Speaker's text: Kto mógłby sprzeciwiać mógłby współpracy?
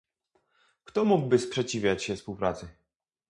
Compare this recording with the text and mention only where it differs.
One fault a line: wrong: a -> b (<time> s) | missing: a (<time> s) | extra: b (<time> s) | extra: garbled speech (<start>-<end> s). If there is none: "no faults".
wrong: mógłby -> się (2.0 s)